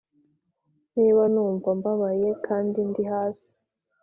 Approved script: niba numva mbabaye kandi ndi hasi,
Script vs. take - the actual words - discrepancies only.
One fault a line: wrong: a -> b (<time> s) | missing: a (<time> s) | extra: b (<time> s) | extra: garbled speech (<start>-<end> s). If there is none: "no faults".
no faults